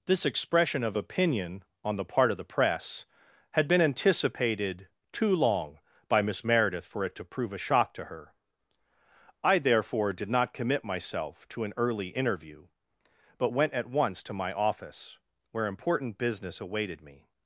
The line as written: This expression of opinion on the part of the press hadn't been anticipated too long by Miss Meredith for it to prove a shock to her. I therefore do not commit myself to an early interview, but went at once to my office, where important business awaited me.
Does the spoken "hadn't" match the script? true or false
false